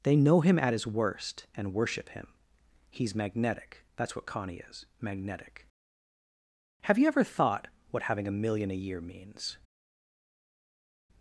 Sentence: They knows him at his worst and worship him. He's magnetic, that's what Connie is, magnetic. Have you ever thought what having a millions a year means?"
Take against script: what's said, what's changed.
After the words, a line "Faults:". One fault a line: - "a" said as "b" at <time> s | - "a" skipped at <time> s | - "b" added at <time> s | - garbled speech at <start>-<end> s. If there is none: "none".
They know him at his worst and worship him. He's magnetic, that's what Connie is, magnetic. Have you ever thought what having a million a year means?"
Faults:
- "knows" said as "know" at 0.1 s
- "millions" said as "million" at 8.3 s